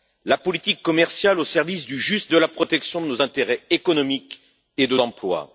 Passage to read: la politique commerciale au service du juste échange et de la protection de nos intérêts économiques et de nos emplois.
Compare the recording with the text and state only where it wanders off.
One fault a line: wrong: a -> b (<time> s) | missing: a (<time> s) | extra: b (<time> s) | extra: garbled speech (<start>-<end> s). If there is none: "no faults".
missing: échange et (2.3 s)
missing: nos (5.0 s)